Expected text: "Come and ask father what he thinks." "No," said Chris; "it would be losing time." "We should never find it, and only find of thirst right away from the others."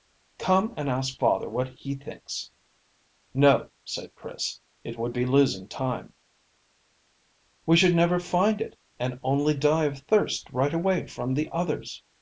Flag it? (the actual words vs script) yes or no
yes